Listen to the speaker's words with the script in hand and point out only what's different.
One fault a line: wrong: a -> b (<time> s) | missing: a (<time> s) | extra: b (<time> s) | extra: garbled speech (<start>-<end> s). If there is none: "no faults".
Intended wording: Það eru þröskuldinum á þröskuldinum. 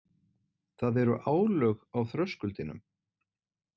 wrong: þröskuldinum -> álög (1.3 s)